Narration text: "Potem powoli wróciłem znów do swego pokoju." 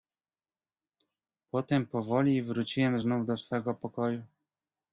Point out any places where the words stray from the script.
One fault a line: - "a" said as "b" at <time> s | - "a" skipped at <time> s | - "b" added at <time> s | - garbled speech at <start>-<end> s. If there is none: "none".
none